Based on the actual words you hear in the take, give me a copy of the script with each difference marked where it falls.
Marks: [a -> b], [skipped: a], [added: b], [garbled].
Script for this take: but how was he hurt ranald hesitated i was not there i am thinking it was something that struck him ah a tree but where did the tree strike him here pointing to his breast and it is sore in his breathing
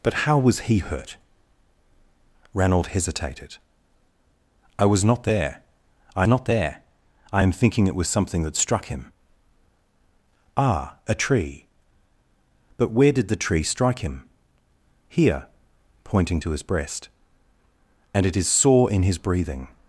but how was he hurt ranald hesitated i was not there i [added: not there i] am thinking it was something that struck him ah a tree but where did the tree strike him here pointing to his breast and it is sore in his breathing